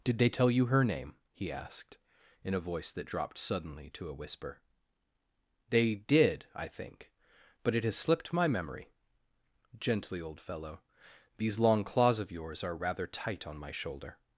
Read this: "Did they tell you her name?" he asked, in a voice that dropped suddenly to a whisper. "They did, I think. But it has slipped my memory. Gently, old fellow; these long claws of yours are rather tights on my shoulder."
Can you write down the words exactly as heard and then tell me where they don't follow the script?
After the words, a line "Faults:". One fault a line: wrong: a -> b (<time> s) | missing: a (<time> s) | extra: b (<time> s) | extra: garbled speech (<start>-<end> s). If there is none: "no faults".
"Did they tell you her name?" he asked, in a voice that dropped suddenly to a whisper. "They did, I think. But it has slipped my memory. Gently, old fellow; these long claws of yours are rather tight on my shoulder."
Faults:
wrong: tights -> tight (13.1 s)